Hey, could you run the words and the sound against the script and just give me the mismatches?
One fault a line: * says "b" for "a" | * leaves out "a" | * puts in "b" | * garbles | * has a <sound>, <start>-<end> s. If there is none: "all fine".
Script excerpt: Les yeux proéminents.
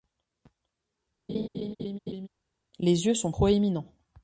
* has a laugh, 1.3-2.3 s
* puts in "sont"